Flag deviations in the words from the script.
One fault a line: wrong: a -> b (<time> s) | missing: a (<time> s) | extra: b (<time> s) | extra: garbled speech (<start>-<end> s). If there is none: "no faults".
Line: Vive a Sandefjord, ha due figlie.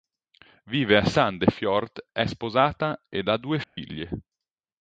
extra: è sposata ed (2.1 s)